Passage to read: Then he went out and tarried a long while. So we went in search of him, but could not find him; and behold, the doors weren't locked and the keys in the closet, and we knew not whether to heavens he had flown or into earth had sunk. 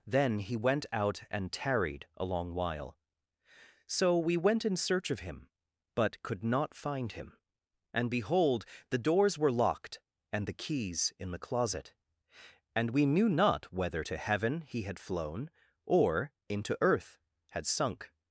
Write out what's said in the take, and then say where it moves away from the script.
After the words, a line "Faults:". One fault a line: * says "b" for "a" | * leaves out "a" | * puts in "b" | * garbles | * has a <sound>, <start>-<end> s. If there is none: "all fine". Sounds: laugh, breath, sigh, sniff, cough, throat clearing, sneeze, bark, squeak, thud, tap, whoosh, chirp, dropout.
Then he went out and tarried a long while. So we went in search of him, but could not find him; and behold, the doors were locked and the keys in the closet, and we knew not whether to heaven he had flown or into earth had sunk.
Faults:
* says "were" for "weren't"
* says "heaven" for "heavens"